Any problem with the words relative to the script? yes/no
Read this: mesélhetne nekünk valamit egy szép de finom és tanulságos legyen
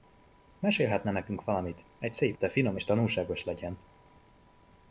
no